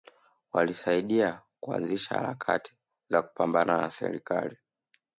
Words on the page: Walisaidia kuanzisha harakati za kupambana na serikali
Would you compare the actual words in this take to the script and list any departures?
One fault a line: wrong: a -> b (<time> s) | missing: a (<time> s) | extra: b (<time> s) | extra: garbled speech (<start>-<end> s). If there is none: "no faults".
no faults